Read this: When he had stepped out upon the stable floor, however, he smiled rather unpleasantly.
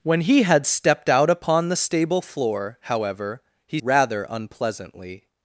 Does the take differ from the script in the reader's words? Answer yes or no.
yes